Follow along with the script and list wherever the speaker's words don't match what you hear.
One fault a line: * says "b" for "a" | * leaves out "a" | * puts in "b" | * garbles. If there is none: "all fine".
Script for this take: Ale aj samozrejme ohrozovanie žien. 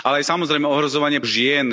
all fine